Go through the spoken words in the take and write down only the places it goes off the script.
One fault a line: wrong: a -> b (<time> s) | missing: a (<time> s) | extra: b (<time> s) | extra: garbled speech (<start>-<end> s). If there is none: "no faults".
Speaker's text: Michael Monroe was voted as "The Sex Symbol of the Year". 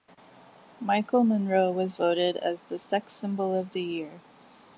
no faults